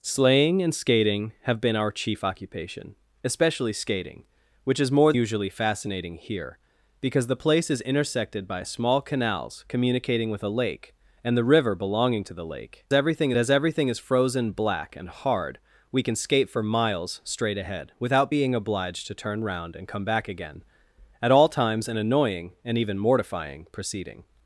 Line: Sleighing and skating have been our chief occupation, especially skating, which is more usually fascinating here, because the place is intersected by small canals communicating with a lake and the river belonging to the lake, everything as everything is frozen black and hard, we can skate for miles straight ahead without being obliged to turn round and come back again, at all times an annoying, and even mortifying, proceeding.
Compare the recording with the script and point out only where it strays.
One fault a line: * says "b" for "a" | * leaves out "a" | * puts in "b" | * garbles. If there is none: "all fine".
all fine